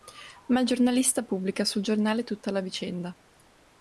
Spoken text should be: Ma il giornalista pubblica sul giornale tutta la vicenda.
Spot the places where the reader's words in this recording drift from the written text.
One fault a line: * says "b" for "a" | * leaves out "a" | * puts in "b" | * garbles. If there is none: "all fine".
all fine